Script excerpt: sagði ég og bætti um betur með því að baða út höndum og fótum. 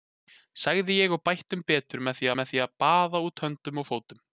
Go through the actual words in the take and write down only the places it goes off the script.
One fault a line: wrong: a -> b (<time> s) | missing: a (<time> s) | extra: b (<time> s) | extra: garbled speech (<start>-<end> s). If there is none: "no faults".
extra: með því (2.4 s)